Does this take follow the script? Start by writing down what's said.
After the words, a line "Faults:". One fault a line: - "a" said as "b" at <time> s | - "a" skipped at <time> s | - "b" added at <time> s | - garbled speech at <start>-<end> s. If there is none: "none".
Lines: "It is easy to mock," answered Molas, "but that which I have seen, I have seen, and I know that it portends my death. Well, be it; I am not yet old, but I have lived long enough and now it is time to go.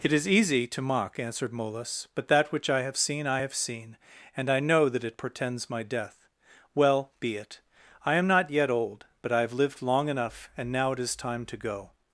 "It is easy to mock," answered Molas, "but that which I have seen, I have seen, and I know that it portends my death. Well, be it; I am not yet old, but I have lived long enough and now it is time to go.
Faults:
none